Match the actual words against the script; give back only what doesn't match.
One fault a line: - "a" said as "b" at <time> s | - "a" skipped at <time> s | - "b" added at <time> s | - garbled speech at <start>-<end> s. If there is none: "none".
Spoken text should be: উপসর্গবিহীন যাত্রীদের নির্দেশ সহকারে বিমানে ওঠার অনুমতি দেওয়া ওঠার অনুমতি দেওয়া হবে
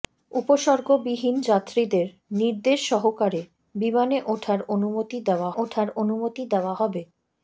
none